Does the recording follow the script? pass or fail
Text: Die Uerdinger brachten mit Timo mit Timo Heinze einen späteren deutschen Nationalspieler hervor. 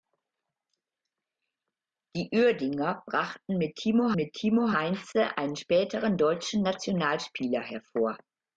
pass